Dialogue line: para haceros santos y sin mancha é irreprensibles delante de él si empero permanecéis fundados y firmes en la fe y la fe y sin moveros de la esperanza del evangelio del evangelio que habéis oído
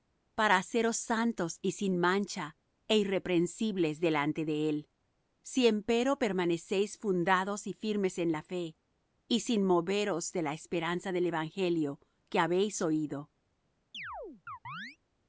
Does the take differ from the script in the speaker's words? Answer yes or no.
yes